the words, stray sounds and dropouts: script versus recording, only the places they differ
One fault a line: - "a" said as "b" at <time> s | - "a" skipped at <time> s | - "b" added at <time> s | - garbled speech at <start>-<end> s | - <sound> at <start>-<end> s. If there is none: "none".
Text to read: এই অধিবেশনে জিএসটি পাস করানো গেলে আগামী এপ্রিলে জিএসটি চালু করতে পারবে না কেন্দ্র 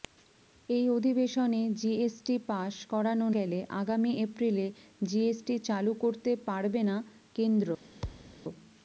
- thud at 8.0-8.4 s